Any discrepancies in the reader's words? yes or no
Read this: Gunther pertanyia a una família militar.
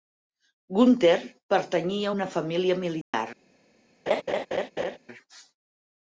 no